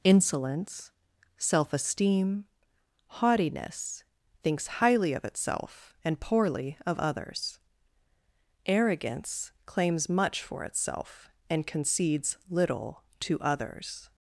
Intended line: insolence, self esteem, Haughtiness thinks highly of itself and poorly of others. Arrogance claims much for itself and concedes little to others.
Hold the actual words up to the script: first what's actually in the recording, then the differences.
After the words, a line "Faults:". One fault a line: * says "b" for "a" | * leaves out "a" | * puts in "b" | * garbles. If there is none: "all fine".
insolence, self esteem, Haughtiness thinks highly of itself and poorly of others. Arrogance claims much for itself and concedes little to others.
Faults:
all fine